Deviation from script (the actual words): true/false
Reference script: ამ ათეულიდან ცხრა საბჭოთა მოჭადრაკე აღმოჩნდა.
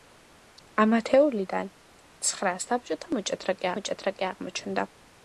true